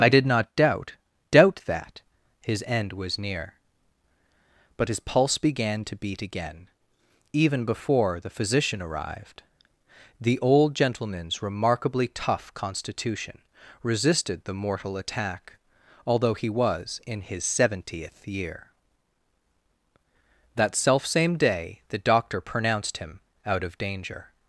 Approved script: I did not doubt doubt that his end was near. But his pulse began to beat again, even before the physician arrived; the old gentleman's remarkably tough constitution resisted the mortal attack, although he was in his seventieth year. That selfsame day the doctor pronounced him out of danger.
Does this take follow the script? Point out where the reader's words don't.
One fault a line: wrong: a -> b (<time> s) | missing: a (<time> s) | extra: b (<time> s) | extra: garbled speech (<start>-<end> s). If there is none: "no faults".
no faults